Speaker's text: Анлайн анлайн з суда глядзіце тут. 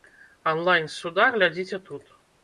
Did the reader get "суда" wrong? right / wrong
right